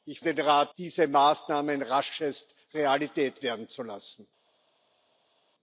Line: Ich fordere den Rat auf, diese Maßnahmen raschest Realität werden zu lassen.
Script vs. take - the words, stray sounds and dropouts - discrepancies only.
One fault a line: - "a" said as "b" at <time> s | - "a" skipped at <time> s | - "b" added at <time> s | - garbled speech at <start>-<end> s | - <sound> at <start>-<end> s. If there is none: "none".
- "fordere" skipped at 0.2 s
- "auf" skipped at 0.7 s